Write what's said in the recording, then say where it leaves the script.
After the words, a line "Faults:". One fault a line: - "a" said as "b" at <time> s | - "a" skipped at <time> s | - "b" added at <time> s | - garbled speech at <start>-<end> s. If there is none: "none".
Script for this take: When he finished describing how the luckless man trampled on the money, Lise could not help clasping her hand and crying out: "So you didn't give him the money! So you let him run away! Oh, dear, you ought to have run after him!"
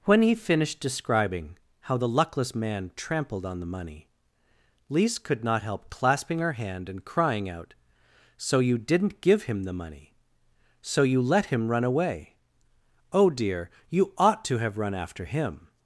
When he finished describing how the luckless man trampled on the money, Lise could not help clasping her hand and crying out: "So you didn't give him the money! So you let him run away! Oh, dear, you ought to have run after him!"
Faults:
none